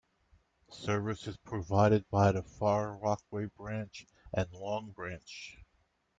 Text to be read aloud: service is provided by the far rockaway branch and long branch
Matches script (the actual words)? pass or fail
pass